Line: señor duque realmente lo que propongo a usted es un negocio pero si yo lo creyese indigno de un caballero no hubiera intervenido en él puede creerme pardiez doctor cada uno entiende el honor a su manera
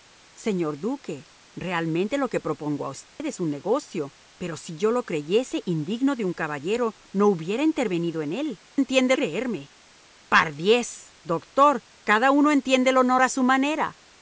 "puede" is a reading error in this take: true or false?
true